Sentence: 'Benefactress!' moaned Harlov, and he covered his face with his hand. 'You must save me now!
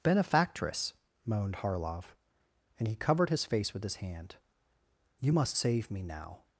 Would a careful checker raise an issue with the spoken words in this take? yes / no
no